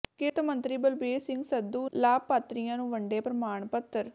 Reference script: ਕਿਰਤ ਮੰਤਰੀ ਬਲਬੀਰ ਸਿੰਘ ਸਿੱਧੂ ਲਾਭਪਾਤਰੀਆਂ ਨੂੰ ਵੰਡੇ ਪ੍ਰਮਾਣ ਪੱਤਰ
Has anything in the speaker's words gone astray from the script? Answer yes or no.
no